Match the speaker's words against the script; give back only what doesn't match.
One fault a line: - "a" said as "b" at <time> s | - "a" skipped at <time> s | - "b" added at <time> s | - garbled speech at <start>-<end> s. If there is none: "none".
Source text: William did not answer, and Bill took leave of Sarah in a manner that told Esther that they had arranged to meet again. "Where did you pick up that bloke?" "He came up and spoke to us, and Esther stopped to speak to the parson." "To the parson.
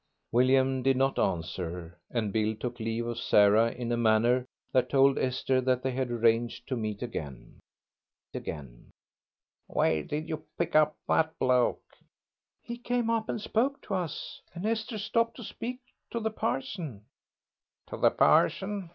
- "again" added at 8.4 s